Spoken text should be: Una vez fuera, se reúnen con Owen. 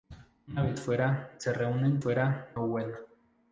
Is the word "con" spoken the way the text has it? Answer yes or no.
no